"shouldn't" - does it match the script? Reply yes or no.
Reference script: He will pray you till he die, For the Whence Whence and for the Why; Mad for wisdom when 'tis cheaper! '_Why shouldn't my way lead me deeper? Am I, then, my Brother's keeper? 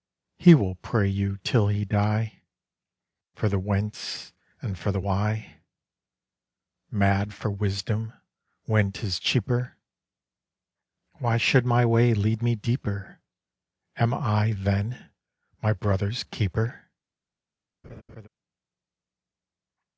no